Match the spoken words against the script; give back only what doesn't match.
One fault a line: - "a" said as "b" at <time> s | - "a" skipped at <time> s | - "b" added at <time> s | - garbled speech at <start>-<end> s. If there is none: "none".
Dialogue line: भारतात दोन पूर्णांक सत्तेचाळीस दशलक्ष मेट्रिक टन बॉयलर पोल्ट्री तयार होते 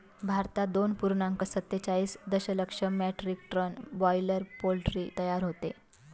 none